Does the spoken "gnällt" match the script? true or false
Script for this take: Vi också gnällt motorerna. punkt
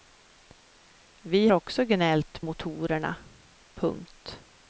true